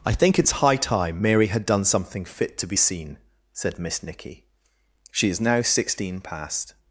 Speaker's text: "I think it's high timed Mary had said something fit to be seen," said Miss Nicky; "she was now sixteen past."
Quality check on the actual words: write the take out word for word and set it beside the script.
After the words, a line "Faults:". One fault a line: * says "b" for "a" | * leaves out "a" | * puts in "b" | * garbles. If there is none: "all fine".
"I think it's high time Mary had done something fit to be seen," said Miss Nicky; "she is now sixteen past."
Faults:
* says "time" for "timed"
* says "done" for "said"
* says "is" for "was"